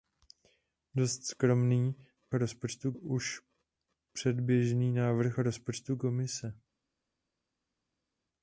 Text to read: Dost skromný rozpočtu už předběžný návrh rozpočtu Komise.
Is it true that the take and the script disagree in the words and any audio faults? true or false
false